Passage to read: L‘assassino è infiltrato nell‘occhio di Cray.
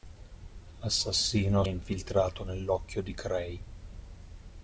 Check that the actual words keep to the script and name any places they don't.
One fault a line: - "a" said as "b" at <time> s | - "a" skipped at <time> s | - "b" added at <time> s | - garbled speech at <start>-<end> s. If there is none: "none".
none